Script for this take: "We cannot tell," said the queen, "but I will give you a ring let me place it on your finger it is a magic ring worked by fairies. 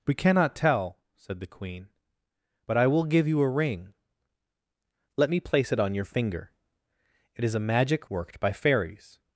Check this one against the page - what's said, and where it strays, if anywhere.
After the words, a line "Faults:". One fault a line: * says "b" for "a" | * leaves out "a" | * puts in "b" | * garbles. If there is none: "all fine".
"We cannot tell," said the queen, "but I will give you a ring let me place it on your finger it is a magic worked by fairies.
Faults:
* leaves out "ring"